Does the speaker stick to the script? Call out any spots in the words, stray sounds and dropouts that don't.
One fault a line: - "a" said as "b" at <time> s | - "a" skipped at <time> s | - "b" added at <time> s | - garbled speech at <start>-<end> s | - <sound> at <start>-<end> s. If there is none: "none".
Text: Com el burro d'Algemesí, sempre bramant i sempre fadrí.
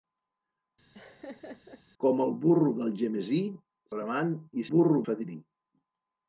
- laugh at 0.9-1.8 s
- "sempre" skipped at 3.4 s
- "sempre" said as "burro" at 4.7 s